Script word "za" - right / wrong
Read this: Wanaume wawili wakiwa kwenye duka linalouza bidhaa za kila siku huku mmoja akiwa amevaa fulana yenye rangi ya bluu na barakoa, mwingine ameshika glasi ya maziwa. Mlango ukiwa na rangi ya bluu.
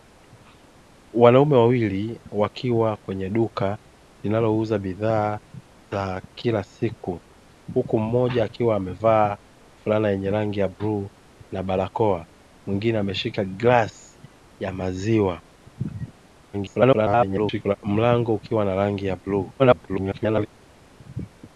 right